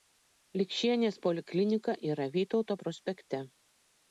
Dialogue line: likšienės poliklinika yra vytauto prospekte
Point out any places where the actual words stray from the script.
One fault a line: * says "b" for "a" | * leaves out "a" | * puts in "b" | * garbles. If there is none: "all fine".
all fine